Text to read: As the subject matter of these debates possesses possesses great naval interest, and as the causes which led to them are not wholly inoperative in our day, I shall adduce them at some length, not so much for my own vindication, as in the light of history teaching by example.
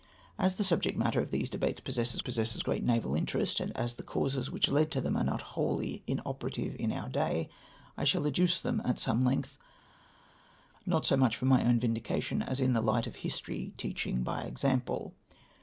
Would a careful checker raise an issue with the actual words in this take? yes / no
no